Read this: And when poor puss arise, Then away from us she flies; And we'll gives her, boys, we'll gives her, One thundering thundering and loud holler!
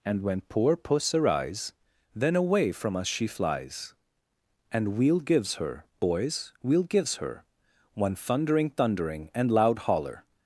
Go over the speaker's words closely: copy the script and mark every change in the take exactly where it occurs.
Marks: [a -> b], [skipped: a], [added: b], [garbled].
And when poor puss arise, Then away from us she flies; And we'll gives her, boys, we'll gives her, One thundering thundering and loud holler!